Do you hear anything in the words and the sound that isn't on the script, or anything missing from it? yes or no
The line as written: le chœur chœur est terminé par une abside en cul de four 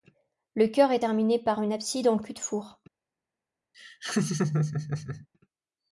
yes